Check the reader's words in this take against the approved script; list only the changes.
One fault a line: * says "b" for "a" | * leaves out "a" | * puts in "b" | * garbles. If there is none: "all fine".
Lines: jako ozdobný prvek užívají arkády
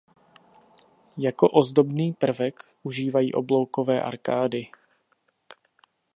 * puts in "obloukové"